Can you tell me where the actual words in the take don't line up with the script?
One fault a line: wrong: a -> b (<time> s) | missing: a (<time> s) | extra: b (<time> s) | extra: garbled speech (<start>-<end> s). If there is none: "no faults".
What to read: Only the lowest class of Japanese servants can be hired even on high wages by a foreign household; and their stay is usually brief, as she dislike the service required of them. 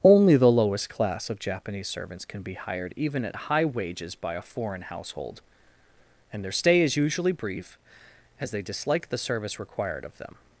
wrong: on -> at (3.2 s)
wrong: she -> they (8.5 s)